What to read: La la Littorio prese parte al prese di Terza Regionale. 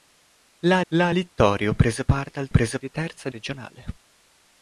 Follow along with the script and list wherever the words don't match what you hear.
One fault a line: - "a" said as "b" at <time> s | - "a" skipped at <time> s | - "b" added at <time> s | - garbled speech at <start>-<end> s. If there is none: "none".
none